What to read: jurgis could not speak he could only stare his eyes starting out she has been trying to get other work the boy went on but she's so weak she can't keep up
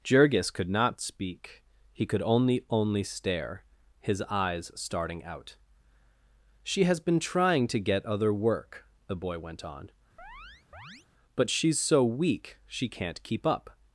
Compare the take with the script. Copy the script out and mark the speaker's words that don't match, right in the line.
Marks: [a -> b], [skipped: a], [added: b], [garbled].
jurgis could not speak he could only [added: only] stare his eyes starting out she has been trying to get other work the boy went on but she's so weak she can't keep up